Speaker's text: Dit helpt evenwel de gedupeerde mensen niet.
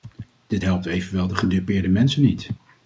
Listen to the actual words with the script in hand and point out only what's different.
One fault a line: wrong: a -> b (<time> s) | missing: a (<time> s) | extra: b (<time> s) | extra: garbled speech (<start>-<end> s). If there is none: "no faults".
no faults